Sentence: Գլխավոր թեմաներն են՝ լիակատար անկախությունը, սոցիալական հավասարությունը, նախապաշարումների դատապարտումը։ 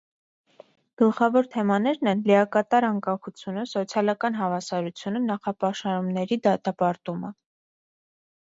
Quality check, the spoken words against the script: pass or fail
pass